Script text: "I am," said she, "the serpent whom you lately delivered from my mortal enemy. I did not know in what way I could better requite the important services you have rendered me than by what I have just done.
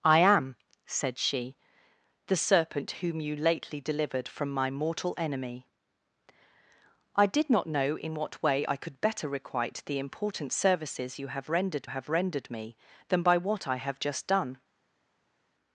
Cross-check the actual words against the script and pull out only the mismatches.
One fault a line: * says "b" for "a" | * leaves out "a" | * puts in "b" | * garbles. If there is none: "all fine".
* puts in "have rendered"